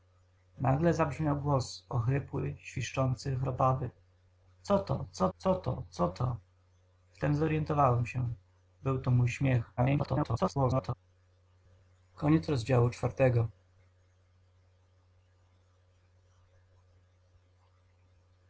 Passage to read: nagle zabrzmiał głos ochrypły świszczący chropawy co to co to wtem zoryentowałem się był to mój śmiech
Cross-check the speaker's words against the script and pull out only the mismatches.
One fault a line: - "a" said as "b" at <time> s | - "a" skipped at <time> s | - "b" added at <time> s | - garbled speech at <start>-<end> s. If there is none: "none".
- "co to co" added at 5.4 s
- garbled speech at 9.8-10.9 s